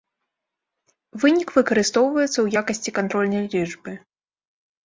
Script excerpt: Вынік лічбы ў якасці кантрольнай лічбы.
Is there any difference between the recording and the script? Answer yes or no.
yes